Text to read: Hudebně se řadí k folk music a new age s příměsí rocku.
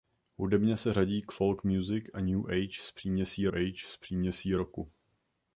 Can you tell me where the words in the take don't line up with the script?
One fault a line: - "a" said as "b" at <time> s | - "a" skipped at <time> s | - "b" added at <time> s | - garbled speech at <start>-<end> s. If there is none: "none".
- "age s příměsí" added at 3.5 s